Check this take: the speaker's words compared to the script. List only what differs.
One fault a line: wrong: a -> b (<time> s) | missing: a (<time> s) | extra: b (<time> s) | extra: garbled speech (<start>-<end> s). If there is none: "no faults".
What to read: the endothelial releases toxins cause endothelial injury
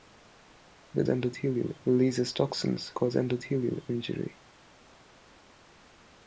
no faults